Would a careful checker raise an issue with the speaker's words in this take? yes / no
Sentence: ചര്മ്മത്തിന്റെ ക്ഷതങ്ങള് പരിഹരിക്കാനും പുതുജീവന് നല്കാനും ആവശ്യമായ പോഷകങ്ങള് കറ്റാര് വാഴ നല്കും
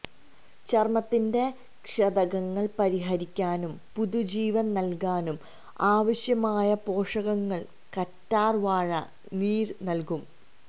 yes